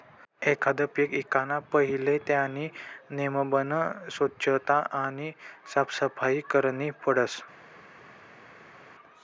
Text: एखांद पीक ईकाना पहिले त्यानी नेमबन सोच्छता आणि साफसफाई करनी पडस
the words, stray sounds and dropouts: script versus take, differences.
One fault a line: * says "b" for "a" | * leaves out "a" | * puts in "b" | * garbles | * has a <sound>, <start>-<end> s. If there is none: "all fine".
all fine